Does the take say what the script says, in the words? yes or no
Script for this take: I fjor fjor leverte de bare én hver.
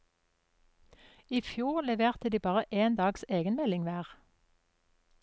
no